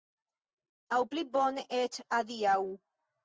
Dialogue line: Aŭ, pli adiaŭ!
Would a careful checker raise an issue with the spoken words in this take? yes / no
yes